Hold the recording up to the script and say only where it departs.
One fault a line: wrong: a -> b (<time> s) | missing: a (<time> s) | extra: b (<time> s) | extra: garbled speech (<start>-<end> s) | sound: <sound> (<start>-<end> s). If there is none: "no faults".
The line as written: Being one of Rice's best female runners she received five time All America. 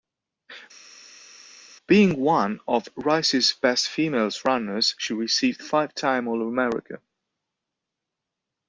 no faults